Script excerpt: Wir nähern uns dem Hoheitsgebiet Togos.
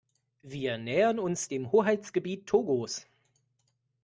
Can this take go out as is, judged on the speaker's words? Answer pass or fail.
pass